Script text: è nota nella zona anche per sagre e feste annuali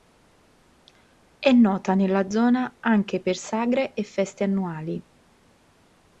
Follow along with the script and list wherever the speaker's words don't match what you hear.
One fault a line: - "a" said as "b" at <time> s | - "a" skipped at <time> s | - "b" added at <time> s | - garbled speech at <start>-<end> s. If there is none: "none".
none